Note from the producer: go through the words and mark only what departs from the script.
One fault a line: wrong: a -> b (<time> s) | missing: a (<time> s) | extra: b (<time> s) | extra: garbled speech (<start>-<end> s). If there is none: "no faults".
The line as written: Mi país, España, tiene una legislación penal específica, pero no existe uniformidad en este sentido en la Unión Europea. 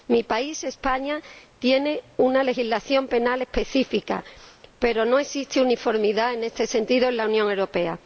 no faults